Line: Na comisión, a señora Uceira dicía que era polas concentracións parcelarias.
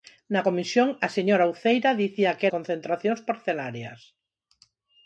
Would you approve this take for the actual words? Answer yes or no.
no